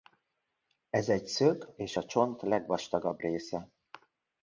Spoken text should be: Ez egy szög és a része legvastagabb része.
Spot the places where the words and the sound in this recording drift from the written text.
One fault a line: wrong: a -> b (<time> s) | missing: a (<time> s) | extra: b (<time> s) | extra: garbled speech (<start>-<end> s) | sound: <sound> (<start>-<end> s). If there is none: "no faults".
wrong: része -> csont (2.1 s)